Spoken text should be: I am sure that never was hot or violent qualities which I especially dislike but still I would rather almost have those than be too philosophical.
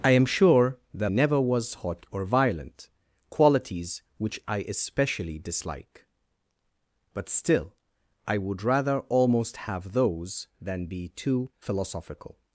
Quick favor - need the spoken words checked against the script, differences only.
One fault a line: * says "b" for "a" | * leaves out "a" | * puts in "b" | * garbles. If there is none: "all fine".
all fine